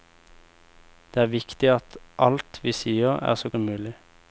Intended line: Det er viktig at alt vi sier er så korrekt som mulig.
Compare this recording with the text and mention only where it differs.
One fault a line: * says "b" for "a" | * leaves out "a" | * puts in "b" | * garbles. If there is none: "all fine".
* leaves out "korrekt"